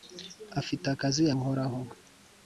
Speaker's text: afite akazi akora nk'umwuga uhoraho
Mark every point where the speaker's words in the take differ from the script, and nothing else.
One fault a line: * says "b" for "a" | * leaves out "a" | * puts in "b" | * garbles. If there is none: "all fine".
* leaves out "akora nk'umwuga"